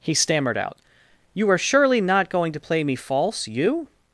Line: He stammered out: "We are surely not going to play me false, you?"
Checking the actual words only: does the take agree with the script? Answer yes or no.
no